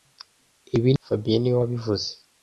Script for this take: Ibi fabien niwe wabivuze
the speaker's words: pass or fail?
pass